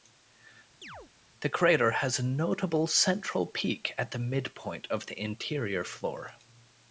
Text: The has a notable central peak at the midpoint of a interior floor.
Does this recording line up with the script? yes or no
no